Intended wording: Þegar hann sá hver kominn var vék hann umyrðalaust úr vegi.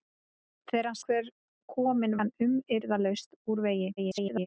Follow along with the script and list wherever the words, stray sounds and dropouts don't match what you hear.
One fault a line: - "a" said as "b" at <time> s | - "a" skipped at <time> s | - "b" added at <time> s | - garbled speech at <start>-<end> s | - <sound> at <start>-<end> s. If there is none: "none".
- "sá" skipped at 1.0 s
- "var vék" skipped at 2.2 s
- garbled speech at 4.0-4.5 s